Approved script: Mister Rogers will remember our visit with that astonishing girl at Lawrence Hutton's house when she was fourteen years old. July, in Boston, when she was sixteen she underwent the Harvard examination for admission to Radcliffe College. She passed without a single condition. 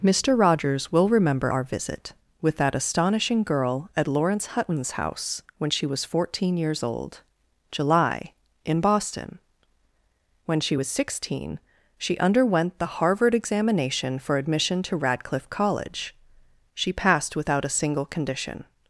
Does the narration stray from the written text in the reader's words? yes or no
no